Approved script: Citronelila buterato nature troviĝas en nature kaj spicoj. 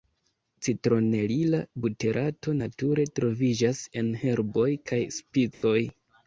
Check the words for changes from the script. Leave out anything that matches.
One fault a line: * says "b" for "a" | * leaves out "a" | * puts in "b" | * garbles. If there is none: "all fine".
* says "herboj" for "nature"